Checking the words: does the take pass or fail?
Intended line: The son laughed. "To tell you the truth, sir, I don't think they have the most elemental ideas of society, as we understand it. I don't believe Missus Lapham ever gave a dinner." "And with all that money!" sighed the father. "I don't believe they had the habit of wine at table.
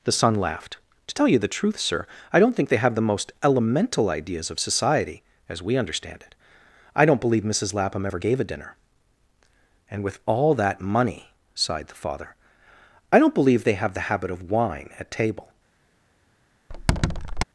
fail